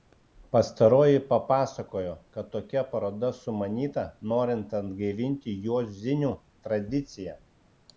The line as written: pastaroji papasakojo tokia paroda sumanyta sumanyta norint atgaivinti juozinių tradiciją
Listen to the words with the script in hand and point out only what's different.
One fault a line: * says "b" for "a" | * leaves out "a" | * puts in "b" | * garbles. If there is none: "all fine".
* puts in "kad"
* leaves out "sumanyta"